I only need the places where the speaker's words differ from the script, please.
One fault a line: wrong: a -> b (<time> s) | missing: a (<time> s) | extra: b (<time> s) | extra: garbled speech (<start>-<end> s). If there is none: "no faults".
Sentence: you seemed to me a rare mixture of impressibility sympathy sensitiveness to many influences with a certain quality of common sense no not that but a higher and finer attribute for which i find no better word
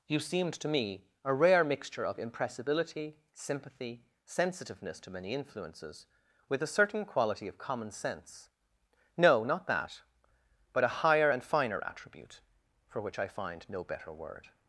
no faults